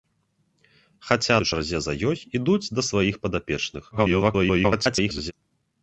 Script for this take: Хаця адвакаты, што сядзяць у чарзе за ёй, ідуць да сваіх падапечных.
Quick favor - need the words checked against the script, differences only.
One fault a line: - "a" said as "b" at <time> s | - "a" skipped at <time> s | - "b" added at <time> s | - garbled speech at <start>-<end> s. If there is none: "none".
- "адвакаты што сядзяць" skipped at 1.3 s
- garbled speech at 3.9-5.3 s